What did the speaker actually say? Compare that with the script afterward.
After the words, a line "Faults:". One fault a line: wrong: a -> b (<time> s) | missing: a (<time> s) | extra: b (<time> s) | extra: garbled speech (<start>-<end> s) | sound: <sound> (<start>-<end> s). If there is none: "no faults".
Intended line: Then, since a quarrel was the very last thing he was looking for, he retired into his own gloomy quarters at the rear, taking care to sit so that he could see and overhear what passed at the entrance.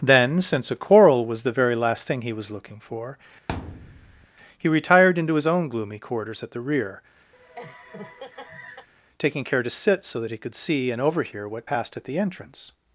Then, since a quarrel was the very last thing he was looking for, he retired into his own gloomy quarters at the rear, taking care to sit so that he could see and overhear what passed at the entrance.
Faults:
sound: thud (3.5-4.3 s)
sound: laugh (7.3-8.9 s)